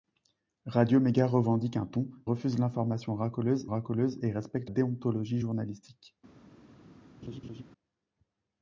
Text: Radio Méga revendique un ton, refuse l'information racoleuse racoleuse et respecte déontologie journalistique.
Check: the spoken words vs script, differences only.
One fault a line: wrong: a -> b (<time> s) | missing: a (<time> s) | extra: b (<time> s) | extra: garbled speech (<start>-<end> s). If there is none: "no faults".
no faults